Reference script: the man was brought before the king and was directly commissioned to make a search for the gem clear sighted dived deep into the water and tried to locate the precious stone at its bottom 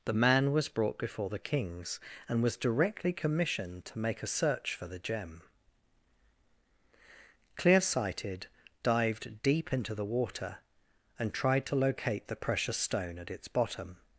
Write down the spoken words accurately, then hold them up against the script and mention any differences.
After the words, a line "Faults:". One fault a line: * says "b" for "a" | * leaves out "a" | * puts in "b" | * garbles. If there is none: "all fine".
the man was brought before the kings and was directly commissioned to make a search for the gem clear sighted dived deep into the water and tried to locate the precious stone at its bottom
Faults:
* says "kings" for "king"